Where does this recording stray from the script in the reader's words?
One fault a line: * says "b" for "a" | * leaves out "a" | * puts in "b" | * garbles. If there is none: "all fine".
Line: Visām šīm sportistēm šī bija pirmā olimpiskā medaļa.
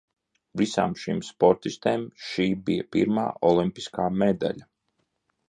all fine